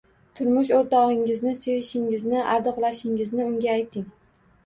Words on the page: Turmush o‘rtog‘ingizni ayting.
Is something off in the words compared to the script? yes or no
yes